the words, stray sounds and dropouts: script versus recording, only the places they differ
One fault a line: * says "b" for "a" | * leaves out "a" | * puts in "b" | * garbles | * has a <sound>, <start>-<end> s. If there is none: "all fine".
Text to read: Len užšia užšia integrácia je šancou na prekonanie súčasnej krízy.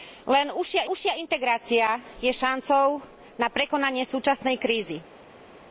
all fine